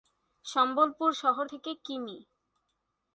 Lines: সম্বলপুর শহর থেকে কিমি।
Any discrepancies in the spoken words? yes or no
no